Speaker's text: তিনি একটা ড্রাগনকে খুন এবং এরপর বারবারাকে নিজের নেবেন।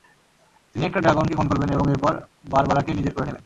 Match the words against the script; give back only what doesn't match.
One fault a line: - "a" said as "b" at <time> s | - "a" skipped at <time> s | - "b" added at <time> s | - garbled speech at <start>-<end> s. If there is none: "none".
- "করবেন" added at 1.5 s
- "করে" added at 3.1 s